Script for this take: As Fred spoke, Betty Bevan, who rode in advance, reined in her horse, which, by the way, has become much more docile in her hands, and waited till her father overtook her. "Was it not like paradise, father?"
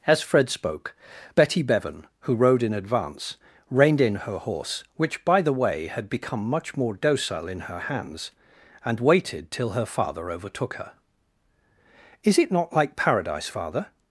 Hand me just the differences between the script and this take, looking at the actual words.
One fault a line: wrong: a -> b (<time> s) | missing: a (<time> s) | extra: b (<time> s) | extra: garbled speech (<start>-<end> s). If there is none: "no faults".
wrong: has -> had (5.9 s)
wrong: Was -> Is (12.2 s)